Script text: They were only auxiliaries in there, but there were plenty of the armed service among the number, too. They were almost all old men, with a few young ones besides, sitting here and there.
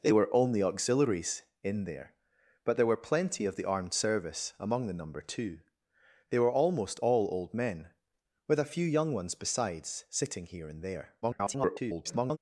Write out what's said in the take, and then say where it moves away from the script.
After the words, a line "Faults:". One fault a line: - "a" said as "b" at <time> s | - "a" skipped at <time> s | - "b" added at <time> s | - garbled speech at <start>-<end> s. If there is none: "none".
They were only auxiliaries in there, but there were plenty of the armed service among the number, too. They were almost all old men, with a few young ones besides, sitting here and there. [garbled]
Faults:
- garbled speech at 11.2-12.4 s